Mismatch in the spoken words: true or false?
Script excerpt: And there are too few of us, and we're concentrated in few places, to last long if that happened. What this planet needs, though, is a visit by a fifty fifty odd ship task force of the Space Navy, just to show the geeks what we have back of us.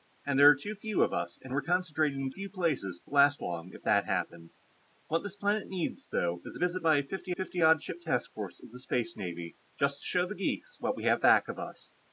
false